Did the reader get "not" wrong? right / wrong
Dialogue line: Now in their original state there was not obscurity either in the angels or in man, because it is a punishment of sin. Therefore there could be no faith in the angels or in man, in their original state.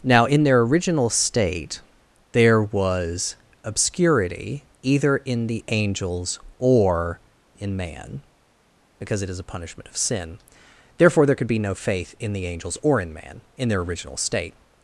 wrong